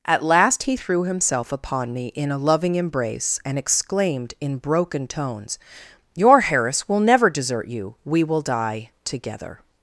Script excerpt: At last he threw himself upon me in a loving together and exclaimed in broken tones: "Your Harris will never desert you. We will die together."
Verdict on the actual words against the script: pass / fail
fail